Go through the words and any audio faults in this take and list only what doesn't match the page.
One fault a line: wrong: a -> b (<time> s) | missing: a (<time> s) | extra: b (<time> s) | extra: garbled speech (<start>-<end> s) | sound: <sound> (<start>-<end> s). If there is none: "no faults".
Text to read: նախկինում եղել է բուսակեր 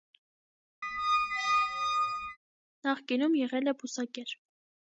sound: squeak (0.8-2.4 s)